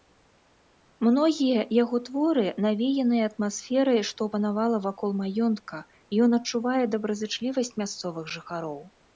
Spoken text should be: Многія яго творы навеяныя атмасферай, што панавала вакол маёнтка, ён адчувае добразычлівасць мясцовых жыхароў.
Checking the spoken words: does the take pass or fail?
pass